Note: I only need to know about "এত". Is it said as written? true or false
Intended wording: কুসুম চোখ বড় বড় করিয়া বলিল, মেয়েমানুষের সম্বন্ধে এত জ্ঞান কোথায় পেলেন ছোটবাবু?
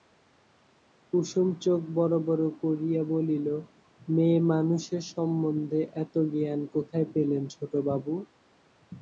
true